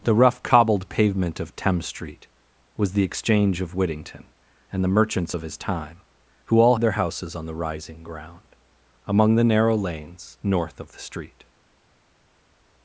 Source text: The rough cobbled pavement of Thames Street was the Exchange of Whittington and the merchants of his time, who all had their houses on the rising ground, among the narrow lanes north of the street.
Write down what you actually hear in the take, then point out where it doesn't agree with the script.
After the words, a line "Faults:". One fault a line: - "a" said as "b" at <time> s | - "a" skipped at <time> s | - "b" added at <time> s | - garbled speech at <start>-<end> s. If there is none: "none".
The rough cobbled pavement of Thames Street was the Exchange of Whittington and the merchants of his time, who all their houses on the rising ground, among the narrow lanes north of the street.
Faults:
- "had" skipped at 6.8 s